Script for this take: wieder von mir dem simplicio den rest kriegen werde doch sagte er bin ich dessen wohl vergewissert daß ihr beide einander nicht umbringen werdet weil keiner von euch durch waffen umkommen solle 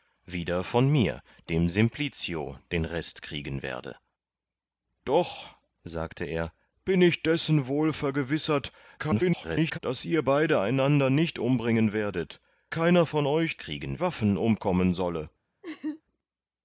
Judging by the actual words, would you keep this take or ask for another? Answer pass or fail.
fail